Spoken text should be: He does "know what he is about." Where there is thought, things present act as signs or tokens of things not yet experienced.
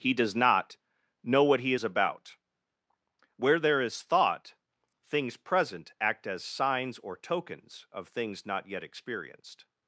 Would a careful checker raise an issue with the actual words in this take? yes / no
yes